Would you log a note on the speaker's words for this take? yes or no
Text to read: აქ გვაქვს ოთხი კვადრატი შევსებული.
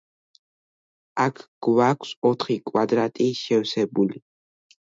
no